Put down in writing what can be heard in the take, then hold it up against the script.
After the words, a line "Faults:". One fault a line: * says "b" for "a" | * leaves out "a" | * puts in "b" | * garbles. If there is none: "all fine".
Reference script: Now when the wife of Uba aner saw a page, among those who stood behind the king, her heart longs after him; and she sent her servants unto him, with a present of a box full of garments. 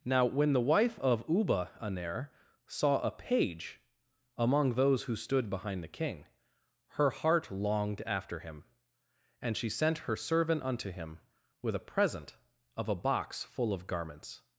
Now when the wife of Uba aner saw a page, among those who stood behind the king, her heart longed after him; and she sent her servant unto him, with a present of a box full of garments.
Faults:
* says "longed" for "longs"
* says "servant" for "servants"